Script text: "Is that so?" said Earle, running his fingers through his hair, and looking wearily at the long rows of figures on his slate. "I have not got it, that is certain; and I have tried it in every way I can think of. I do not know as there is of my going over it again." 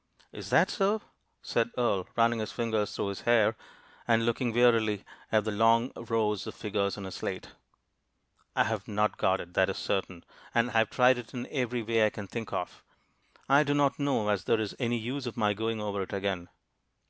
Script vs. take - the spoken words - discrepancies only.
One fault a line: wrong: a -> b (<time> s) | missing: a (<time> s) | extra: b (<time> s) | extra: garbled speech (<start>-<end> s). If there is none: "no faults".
extra: any use (14.8 s)